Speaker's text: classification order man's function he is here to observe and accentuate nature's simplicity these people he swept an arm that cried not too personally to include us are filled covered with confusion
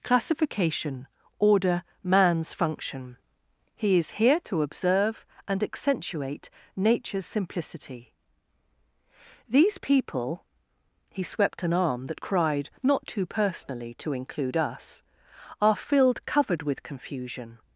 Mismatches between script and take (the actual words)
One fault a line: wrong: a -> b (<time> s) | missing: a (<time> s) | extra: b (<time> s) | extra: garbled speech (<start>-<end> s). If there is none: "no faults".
no faults